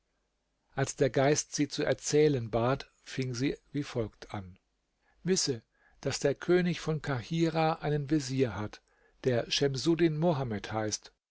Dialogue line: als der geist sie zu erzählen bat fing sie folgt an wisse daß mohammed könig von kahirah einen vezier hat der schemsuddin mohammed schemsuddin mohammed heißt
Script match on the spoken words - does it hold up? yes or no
no